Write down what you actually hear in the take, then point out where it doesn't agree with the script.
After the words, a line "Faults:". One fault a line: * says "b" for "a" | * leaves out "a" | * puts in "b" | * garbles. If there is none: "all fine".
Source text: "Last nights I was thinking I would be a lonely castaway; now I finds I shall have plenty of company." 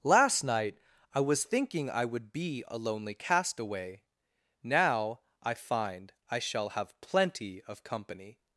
"Last night I was thinking I would be a lonely castaway; now I find I shall have plenty of company."
Faults:
* says "night" for "nights"
* says "find" for "finds"